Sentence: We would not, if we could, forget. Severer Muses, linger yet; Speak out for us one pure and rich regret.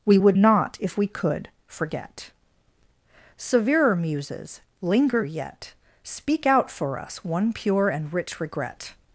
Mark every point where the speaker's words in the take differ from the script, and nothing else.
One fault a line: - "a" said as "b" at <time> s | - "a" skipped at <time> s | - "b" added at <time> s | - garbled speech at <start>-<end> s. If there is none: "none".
none